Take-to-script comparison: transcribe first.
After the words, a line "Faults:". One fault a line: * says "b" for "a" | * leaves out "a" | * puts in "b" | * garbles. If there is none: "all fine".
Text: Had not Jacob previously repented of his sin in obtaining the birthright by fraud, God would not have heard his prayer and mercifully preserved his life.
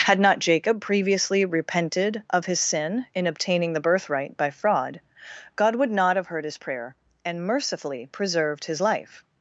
Had not Jacob previously repented of his sin in obtaining the birthright by fraud, God would not have heard his prayer and mercifully preserved his life.
Faults:
all fine